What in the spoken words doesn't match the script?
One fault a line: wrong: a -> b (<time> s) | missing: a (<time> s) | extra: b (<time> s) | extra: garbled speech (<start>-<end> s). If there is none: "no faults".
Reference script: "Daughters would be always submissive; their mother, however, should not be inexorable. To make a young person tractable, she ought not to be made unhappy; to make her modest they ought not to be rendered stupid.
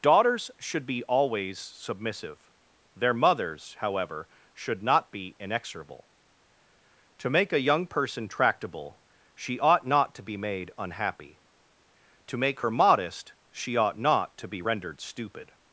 wrong: would -> should (0.6 s)
wrong: mother -> mothers (3.1 s)
wrong: they -> she (13.5 s)